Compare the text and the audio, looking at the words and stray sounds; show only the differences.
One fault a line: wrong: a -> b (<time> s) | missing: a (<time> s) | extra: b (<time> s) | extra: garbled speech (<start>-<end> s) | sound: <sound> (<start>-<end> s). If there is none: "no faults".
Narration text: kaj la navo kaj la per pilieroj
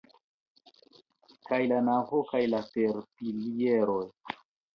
no faults